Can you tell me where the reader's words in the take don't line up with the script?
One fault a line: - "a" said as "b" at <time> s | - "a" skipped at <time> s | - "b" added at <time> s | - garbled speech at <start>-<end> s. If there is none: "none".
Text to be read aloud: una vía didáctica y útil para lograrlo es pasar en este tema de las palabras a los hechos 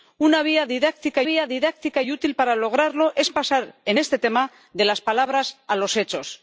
- "vía didáctica" added at 1.2 s